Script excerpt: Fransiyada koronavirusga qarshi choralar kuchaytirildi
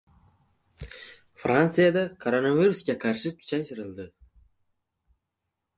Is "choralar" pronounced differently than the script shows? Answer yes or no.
yes